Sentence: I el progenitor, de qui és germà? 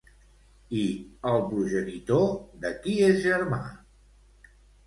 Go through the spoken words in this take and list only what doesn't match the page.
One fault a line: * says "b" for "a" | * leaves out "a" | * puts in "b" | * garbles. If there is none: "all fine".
all fine